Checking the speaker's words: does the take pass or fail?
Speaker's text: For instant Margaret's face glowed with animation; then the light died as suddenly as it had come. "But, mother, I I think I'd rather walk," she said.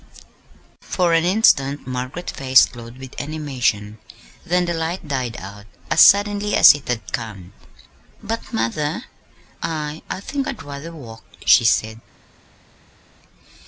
fail